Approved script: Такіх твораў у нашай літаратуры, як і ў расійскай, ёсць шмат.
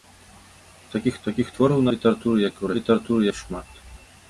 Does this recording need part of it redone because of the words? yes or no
yes